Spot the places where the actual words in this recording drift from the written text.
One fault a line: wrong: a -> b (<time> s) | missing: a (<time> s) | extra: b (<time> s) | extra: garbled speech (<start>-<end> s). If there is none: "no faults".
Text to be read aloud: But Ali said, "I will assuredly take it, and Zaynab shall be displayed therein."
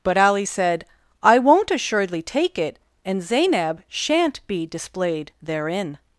wrong: will -> won't (1.4 s)
wrong: shall -> shan't (3.9 s)